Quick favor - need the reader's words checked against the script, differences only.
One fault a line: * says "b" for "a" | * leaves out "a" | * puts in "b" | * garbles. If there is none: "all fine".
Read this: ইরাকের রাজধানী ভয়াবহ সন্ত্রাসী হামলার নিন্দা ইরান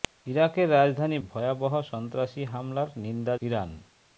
all fine